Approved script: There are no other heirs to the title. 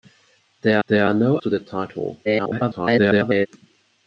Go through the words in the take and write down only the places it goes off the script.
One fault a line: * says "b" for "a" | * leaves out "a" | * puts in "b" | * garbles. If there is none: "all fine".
* puts in "there"
* leaves out "other heirs"
* garbles